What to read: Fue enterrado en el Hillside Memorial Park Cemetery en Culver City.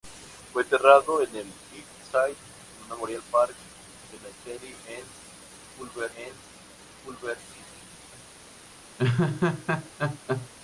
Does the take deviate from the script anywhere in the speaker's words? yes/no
yes